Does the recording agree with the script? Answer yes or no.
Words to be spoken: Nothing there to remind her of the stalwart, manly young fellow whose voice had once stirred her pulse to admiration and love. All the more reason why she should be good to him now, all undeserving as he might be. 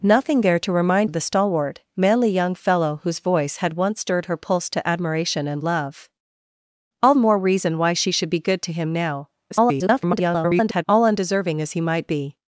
no